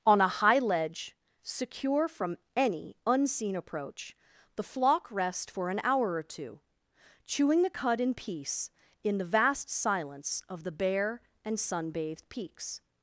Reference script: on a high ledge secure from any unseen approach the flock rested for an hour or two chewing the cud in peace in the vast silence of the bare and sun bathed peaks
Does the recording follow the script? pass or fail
fail